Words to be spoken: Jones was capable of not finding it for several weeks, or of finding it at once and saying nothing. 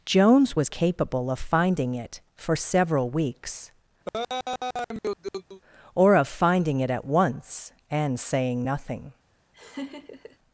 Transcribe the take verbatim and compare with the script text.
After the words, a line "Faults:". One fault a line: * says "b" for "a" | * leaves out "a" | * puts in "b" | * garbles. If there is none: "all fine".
Jones was capable of finding it for several weeks, or of finding it at once and saying nothing.
Faults:
* leaves out "not"